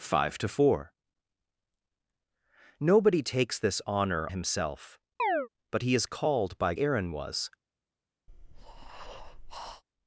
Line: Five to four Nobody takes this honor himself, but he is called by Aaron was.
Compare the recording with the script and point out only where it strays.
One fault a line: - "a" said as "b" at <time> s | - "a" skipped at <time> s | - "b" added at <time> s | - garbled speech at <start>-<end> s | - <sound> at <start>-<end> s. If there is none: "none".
- chirp at 5.2-5.5 s
- breath at 8.3-9.8 s